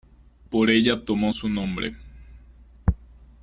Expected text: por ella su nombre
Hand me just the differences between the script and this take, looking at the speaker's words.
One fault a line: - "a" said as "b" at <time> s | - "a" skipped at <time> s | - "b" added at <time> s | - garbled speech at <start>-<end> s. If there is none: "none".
- "tomó" added at 1.1 s